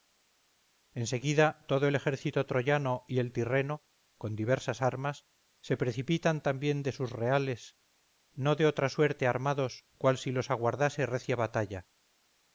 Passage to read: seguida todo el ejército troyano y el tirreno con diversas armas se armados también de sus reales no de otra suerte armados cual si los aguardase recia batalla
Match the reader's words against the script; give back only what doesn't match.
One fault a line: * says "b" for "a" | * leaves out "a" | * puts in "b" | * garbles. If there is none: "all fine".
* says "precipitan" for "armados"